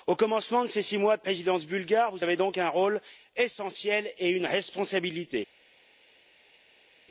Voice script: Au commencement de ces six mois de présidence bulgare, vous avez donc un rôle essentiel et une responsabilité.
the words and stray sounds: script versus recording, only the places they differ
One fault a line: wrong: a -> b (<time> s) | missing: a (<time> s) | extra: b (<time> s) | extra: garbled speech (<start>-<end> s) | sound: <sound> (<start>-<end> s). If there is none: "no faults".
no faults